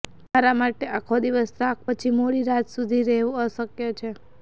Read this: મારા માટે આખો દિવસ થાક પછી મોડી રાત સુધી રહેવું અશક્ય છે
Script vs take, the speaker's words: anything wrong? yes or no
no